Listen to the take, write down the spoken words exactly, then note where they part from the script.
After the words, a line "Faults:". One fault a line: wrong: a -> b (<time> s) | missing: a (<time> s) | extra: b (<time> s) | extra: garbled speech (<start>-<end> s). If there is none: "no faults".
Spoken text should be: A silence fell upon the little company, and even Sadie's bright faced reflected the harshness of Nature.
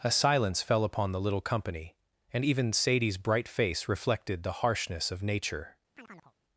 A silence fell upon the little company, and even Sadie's bright face reflected the harshness of Nature.
Faults:
wrong: faced -> face (3.5 s)